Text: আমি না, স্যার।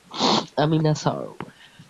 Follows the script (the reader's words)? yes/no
yes